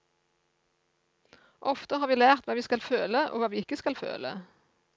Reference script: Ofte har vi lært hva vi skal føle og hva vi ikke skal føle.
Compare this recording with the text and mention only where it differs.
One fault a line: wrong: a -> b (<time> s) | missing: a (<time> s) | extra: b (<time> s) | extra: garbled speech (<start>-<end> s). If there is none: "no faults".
no faults